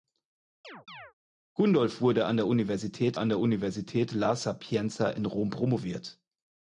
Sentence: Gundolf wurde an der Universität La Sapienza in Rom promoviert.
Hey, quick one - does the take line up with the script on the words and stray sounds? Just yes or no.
no